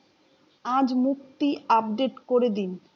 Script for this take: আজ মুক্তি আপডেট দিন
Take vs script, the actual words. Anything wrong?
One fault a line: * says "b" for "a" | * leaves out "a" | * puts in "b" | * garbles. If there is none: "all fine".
* puts in "করে"